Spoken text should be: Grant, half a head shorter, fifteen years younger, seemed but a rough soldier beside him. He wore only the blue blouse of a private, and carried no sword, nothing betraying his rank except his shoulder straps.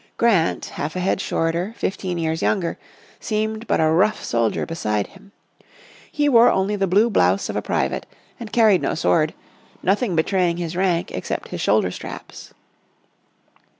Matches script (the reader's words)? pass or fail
pass